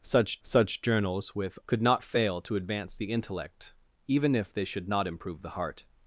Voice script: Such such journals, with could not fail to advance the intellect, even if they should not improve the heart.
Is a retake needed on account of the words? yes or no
no